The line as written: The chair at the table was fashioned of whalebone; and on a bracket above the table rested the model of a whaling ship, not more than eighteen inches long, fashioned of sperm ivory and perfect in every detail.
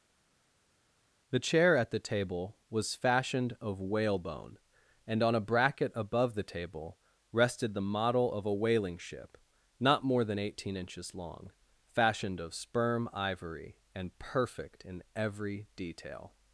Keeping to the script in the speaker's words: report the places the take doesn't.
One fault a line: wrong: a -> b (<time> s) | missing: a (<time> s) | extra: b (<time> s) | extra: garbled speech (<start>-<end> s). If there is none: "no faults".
no faults